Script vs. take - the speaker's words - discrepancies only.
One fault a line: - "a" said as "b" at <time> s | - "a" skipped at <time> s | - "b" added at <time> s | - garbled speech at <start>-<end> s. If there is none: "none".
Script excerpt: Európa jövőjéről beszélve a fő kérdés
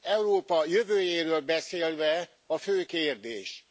none